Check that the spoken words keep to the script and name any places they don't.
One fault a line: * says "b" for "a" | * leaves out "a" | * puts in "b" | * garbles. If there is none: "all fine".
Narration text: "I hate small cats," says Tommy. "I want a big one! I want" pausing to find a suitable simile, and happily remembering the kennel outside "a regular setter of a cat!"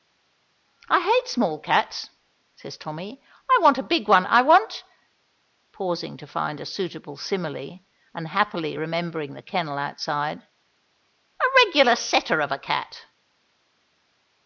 all fine